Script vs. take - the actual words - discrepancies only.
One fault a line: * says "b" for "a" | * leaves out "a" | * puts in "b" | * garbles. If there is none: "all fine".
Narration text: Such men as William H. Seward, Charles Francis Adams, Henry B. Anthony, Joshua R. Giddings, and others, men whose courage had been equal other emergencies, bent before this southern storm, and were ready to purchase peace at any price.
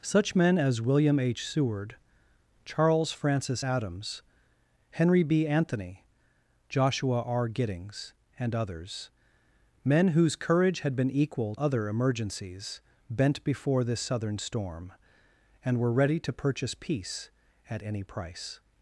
all fine